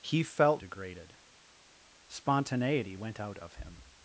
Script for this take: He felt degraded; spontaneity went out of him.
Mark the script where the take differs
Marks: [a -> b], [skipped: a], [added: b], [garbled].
He felt degraded; spontaneity went out of him.